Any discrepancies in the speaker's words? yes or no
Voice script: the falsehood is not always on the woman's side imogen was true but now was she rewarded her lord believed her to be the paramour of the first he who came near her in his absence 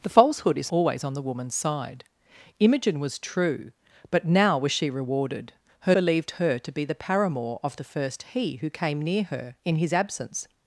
yes